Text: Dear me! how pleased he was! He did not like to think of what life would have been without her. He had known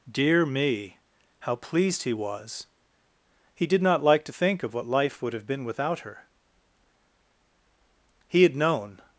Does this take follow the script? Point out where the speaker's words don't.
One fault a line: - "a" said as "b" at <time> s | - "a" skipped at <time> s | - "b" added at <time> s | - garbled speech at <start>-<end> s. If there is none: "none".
none